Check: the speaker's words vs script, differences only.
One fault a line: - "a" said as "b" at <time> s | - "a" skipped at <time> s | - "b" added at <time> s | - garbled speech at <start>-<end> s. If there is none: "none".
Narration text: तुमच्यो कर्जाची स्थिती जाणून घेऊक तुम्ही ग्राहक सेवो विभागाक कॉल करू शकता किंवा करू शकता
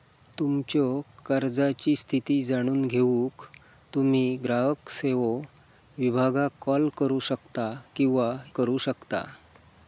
none